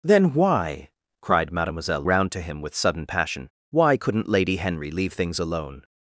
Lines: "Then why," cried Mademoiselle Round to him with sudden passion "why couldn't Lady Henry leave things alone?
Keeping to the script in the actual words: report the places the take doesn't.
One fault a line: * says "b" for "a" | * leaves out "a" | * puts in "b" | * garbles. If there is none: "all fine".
all fine